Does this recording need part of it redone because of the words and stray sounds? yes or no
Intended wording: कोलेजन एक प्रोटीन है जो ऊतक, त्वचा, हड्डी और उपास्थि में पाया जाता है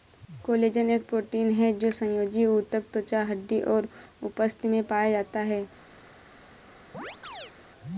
yes